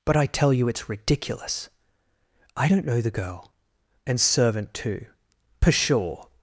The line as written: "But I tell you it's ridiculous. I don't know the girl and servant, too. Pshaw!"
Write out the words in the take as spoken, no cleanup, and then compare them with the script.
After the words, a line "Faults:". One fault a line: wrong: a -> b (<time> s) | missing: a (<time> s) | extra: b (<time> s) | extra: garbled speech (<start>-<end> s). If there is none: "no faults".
"But I tell you it's ridiculous. I don't know the girl and servant, too. Pshaw!"
Faults:
no faults